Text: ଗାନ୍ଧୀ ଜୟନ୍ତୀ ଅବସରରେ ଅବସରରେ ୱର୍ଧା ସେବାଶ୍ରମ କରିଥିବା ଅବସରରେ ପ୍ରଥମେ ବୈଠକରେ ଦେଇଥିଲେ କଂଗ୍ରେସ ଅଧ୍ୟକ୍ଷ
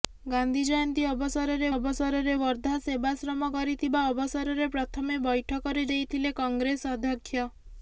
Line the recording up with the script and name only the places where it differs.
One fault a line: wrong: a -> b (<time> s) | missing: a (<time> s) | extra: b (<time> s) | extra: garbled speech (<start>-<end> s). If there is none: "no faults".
no faults